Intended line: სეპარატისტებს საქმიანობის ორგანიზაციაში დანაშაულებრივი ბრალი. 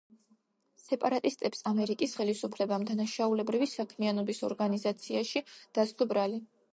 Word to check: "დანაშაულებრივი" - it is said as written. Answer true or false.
false